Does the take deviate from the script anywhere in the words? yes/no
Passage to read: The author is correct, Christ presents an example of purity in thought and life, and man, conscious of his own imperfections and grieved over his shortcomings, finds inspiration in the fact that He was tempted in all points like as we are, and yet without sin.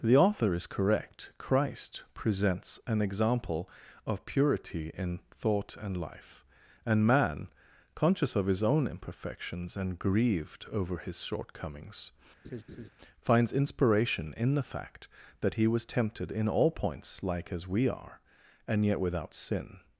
no